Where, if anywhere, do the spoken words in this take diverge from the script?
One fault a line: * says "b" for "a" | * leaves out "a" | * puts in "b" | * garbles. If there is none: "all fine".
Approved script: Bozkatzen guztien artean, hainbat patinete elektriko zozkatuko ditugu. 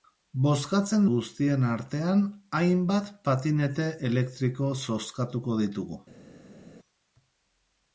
all fine